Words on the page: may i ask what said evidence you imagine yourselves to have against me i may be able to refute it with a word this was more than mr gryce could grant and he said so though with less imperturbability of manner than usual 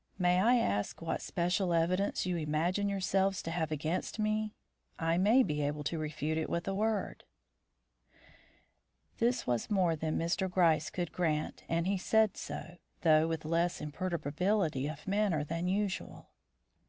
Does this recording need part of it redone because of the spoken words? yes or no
yes